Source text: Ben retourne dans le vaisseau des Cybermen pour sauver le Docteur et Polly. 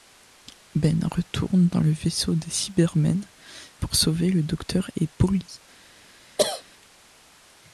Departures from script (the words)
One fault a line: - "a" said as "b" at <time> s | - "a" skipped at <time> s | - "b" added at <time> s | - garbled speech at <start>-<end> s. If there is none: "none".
none